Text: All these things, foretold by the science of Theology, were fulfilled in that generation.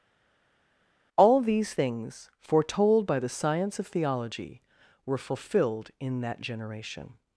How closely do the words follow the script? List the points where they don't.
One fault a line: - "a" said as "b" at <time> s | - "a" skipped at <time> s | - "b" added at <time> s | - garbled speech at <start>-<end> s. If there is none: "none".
none